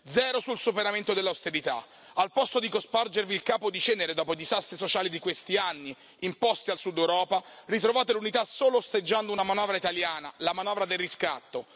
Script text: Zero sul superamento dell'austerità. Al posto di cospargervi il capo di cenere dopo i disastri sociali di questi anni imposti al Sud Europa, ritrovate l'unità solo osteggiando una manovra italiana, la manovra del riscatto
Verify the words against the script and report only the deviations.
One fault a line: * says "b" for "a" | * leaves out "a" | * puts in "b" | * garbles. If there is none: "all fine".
all fine